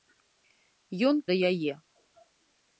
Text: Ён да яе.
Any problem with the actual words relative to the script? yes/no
no